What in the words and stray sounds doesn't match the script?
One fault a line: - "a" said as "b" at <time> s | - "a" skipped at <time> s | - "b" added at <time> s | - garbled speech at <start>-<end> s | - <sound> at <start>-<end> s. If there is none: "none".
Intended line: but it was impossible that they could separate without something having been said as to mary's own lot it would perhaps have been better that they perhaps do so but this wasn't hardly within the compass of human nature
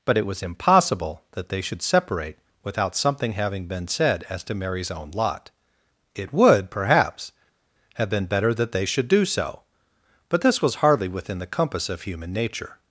- "could" said as "should" at 1.6 s
- "perhaps" said as "should" at 8.8 s
- "wasn't" said as "was" at 10.6 s